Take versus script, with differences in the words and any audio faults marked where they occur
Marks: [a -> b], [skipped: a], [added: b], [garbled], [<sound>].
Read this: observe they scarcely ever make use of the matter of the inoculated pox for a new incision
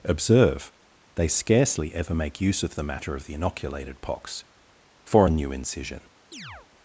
observe they scarcely ever make use of the matter of the inoculated pox for a new incision [chirp]